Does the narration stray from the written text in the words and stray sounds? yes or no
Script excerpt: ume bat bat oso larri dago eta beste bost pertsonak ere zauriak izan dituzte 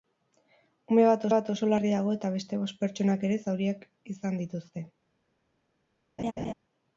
yes